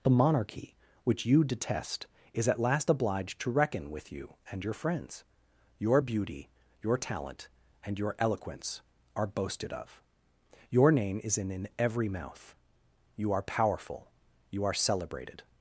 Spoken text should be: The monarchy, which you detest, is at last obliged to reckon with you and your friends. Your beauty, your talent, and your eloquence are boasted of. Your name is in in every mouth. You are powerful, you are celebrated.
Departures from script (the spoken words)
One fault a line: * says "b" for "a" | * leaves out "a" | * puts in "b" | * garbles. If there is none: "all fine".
all fine